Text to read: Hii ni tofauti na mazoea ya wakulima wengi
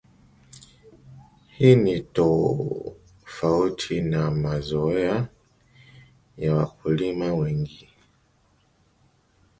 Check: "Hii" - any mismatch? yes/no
no